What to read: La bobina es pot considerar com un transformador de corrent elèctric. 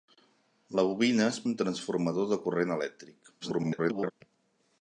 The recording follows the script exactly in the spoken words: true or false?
false